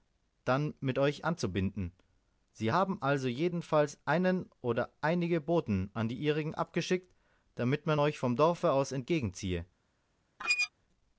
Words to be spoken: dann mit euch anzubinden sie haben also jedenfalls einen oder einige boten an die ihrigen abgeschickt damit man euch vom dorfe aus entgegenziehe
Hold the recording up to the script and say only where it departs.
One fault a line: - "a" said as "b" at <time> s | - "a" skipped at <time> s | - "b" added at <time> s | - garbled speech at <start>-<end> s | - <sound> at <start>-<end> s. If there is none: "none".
- squeak at 10.4-10.7 s